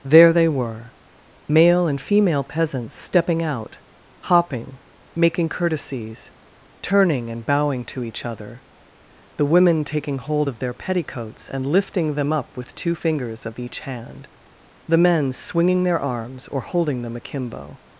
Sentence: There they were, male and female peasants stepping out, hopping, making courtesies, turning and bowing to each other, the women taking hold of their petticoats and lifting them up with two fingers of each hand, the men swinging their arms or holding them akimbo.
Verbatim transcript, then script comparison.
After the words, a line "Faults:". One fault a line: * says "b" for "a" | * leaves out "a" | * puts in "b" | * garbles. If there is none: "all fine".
There they were, male and female peasants stepping out, hopping, making courtesies, turning and bowing to each other, the women taking hold of their petticoats and lifting them up with two fingers of each hand, the men swinging their arms or holding them akimbo.
Faults:
all fine